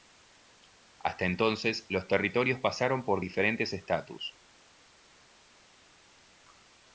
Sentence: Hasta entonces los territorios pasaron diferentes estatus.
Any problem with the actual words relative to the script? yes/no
yes